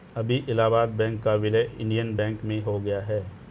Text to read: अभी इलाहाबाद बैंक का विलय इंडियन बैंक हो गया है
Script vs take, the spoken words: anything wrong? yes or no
yes